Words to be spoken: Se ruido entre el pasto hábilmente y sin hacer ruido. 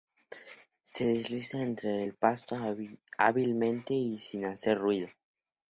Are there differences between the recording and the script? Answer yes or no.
yes